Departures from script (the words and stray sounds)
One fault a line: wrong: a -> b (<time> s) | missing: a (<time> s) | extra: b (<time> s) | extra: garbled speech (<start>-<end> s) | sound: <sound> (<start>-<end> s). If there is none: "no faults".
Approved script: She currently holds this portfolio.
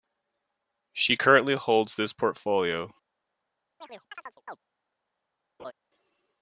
sound: chirp (3.8-4.6 s)
sound: laugh (5.6-5.7 s)